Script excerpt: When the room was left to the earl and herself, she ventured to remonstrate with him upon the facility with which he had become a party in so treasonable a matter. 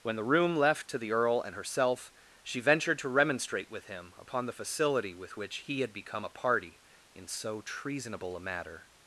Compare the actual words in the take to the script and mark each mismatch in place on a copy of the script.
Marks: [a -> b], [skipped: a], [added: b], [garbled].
When the room [skipped: was] left to the earl and herself, she ventured to remonstrate with him upon the facility with which he had become a party in so treasonable a matter.